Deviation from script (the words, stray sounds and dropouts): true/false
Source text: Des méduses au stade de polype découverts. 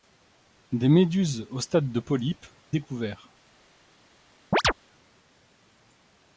true